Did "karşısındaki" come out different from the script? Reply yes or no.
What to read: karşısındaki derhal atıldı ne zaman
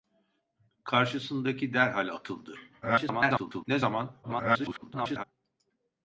no